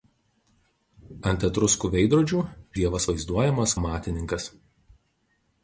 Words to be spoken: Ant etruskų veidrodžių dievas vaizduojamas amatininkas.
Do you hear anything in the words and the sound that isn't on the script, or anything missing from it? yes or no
no